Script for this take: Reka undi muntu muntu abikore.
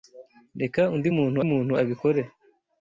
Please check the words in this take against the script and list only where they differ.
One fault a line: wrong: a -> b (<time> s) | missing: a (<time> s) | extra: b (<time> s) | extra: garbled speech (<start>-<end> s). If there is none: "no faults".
no faults